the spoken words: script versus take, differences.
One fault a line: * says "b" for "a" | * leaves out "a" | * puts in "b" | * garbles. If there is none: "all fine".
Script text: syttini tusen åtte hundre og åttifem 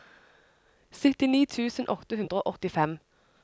all fine